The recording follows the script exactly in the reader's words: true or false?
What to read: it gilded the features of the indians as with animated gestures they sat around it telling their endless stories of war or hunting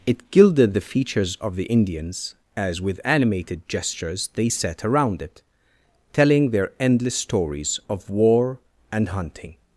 false